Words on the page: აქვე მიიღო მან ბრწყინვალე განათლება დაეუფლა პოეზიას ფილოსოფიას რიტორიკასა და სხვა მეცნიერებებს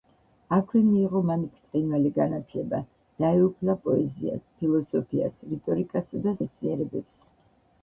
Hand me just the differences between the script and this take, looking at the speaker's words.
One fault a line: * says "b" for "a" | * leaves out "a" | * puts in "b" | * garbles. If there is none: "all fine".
* leaves out "სხვა"